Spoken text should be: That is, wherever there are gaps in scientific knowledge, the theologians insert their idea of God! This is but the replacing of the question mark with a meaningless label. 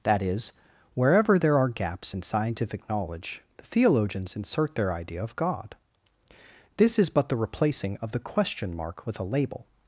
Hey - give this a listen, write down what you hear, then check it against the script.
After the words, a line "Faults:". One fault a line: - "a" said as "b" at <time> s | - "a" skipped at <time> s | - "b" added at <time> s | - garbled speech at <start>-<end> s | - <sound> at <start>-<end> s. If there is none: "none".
That is, wherever there are gaps in scientific knowledge, the theologians insert their idea of God! This is but the replacing of the question mark with a label.
Faults:
- "meaningless" skipped at 9.2 s